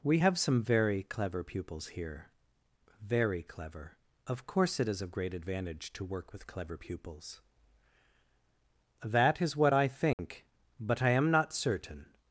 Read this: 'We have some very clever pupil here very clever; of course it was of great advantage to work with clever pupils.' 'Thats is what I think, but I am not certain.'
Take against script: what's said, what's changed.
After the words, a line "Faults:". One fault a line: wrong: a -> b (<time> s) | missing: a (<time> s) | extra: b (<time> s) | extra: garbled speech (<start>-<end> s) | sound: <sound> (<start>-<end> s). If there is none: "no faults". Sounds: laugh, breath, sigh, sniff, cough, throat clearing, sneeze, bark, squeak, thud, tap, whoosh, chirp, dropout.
'We have some very clever pupils here very clever; of course it is of great advantage to work with clever pupils.' 'That is what I think, but I am not certain.'
Faults:
wrong: pupil -> pupils (1.4 s)
wrong: was -> is (4.9 s)
wrong: Thats -> That (9.0 s)
sound: dropout (10.1-10.2 s)